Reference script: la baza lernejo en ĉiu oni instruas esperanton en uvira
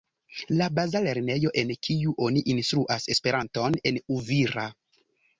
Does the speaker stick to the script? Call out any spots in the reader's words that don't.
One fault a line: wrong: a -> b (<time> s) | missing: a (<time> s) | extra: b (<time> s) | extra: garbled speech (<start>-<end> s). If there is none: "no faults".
wrong: ĉiu -> kiu (1.9 s)